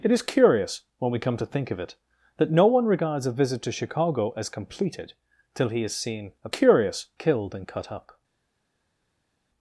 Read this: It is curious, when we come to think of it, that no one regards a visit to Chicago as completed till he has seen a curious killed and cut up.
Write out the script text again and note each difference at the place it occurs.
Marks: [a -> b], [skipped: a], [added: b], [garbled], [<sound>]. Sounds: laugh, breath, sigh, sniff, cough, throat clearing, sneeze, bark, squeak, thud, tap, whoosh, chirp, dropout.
It is curious, when we come to think of it, that no one regards a visit to Chicago as completed till he has seen a curious killed and cut up.